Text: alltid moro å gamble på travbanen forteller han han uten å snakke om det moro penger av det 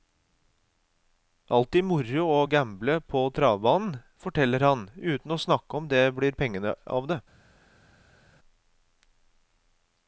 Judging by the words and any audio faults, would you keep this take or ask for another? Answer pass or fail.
fail